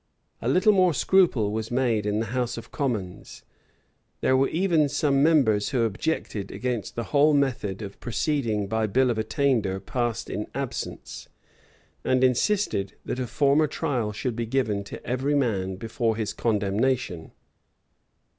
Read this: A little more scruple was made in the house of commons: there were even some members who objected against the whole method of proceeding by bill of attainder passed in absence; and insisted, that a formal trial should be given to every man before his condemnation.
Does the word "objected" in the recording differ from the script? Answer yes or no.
no